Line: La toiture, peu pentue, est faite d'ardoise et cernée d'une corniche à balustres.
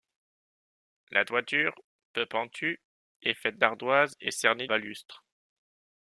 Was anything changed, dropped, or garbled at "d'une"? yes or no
yes